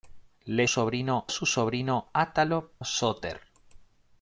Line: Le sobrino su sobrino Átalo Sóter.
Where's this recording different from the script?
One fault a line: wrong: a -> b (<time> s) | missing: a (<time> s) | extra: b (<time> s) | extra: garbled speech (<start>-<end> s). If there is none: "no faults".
no faults